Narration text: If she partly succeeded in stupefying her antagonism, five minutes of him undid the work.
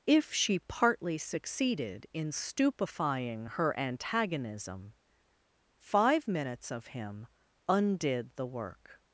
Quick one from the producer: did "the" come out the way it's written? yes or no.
yes